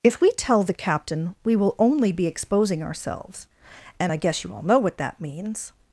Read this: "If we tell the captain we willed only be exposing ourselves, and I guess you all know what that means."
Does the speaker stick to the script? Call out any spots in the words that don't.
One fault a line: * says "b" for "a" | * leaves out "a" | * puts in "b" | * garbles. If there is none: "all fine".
* says "will" for "willed"